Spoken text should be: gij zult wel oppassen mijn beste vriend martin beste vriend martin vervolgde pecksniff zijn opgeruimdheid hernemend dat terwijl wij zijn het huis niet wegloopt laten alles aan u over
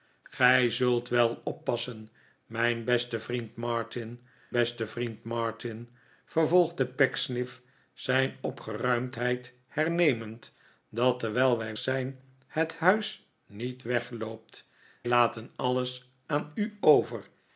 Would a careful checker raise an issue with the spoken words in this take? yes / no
no